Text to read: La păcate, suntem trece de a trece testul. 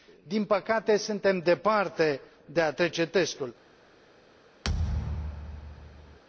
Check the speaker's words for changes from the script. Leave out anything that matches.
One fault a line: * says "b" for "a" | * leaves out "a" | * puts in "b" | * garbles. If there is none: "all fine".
* says "Din" for "La"
* says "departe" for "trece"